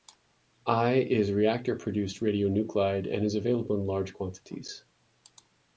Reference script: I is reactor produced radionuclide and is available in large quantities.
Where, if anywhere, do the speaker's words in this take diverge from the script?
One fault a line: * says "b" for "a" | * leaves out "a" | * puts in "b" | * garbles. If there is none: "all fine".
all fine